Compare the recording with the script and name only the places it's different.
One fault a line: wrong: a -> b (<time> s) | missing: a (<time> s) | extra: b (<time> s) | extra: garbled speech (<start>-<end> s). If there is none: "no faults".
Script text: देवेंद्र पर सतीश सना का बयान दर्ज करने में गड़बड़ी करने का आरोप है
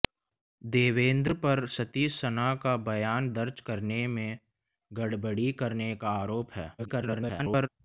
extra: garbled speech (6.8-7.7 s)